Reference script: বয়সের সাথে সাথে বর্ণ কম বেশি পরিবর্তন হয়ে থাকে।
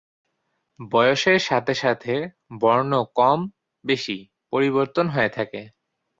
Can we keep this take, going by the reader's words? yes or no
yes